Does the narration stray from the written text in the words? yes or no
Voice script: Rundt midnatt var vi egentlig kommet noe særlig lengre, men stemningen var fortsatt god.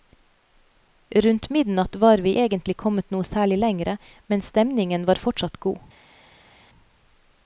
no